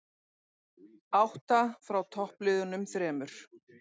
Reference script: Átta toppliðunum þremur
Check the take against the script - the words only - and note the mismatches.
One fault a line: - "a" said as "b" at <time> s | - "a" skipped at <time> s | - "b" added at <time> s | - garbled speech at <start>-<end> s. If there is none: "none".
- "frá" added at 1.9 s